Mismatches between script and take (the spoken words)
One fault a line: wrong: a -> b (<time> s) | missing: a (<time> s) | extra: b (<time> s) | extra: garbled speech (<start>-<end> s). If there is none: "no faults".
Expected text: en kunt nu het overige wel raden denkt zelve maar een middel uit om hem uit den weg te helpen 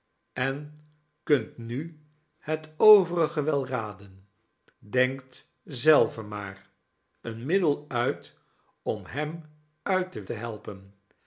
missing: weg (10.2 s)